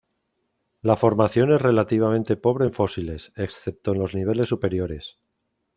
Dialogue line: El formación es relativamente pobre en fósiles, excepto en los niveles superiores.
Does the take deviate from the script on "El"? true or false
true